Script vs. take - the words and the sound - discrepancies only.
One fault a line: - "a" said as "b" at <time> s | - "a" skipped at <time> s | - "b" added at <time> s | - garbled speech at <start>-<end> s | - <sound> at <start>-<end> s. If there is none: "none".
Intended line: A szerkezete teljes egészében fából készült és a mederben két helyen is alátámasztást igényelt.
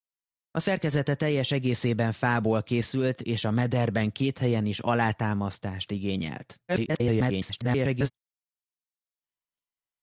- garbled speech at 6.7-8.1 s